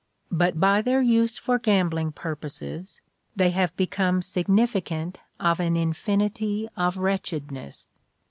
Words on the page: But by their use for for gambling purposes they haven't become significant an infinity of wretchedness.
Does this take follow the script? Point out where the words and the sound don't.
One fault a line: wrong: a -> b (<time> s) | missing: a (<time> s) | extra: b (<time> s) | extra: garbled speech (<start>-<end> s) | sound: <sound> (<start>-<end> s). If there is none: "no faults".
missing: for (1.6 s)
wrong: haven't -> have (3.5 s)
extra: of (5.4 s)